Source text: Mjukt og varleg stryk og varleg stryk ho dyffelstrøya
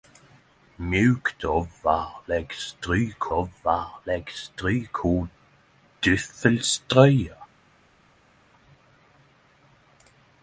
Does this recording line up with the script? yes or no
yes